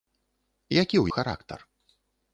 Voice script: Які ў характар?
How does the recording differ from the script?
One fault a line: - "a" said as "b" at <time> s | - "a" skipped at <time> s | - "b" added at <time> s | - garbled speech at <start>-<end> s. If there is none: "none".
none